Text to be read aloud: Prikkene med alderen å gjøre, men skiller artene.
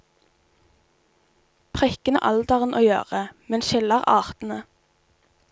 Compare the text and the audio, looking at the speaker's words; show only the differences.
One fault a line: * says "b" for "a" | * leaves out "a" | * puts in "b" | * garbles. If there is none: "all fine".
all fine